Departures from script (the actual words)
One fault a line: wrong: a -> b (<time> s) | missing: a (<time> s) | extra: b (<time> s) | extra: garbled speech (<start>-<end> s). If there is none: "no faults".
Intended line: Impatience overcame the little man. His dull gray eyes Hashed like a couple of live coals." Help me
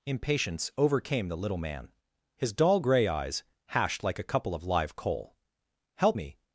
wrong: coals -> coal (5.0 s)